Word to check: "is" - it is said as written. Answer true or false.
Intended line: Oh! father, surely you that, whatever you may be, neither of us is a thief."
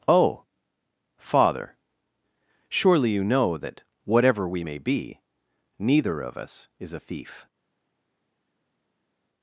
true